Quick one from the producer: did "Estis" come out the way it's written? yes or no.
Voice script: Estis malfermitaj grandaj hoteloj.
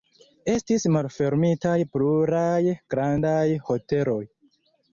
yes